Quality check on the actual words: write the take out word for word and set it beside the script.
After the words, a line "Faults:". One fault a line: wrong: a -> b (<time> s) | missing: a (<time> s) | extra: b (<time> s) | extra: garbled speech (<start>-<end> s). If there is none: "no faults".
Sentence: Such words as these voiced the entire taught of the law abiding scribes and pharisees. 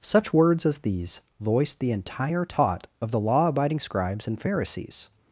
Such words as these voiced the entire taught of the law abiding scribes and pharisees.
Faults:
no faults